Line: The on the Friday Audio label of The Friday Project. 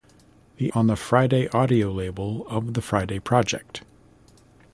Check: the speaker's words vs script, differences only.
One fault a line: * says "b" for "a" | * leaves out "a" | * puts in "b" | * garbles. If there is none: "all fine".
all fine